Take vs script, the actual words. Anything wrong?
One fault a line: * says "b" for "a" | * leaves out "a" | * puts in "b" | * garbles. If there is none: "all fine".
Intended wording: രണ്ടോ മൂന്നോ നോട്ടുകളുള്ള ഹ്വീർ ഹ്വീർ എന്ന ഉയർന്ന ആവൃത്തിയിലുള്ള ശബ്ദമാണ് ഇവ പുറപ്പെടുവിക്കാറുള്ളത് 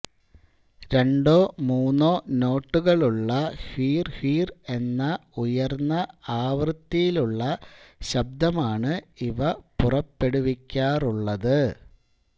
all fine